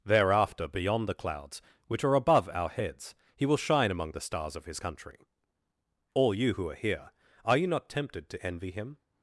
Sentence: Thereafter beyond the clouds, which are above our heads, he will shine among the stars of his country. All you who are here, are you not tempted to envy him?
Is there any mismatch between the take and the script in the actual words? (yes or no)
no